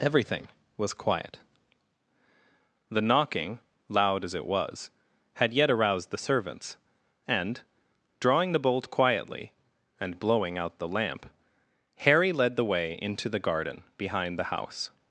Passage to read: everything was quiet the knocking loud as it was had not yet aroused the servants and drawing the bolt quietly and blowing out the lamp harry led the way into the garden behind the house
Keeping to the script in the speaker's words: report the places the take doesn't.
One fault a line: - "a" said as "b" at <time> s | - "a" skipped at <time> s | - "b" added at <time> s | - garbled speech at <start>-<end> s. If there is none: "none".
- "not" skipped at 5.5 s